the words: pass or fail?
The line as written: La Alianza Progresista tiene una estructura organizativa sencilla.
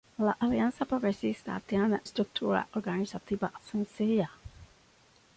fail